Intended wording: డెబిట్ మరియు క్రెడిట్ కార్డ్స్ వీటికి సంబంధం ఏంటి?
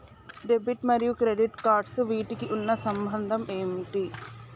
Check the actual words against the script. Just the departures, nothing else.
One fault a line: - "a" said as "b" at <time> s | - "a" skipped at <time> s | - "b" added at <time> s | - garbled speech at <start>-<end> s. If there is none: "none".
- "ఉన్న" added at 2.6 s